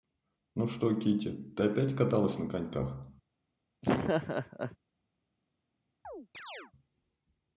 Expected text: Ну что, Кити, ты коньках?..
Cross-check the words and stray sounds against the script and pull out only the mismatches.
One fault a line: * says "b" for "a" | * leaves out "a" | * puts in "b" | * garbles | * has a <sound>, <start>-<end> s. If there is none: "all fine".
* puts in "опять каталась на"
* has a laugh, 3.8-4.8 s
* has a chirp, 6.0-6.7 s